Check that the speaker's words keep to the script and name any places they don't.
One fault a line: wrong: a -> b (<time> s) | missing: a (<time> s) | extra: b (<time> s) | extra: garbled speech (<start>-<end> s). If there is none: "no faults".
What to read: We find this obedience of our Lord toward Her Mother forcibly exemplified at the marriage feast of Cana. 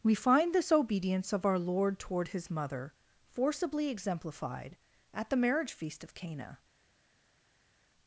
wrong: Her -> His (2.3 s)